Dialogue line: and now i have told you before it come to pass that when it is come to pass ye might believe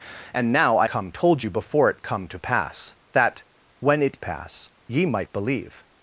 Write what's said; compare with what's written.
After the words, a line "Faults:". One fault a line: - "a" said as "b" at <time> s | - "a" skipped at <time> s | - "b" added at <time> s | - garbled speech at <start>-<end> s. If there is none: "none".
and now i come told you before it come to pass that when it pass ye might believe
Faults:
- "have" said as "come" at 0.8 s
- "is come to" skipped at 4.2 s